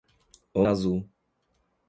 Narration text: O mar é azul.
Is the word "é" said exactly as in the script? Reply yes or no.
no